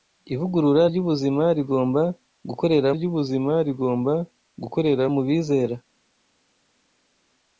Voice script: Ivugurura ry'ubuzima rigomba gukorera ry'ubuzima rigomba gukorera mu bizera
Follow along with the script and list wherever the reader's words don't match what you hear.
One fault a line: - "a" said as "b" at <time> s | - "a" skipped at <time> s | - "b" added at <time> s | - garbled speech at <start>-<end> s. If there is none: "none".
none